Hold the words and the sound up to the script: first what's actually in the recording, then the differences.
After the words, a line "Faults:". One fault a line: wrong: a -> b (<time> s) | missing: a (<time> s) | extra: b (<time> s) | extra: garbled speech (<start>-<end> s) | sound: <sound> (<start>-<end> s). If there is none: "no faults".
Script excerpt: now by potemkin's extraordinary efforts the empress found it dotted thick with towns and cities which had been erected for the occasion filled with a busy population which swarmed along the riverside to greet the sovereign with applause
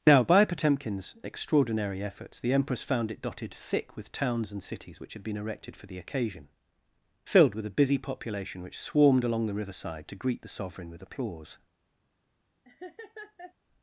now by potemkin's extraordinary efforts the empress found it dotted thick with towns and cities which had been erected for the occasion filled with a busy population which swarmed along the riverside to greet the sovereign with applause
Faults:
sound: laugh (12.6-13.5 s)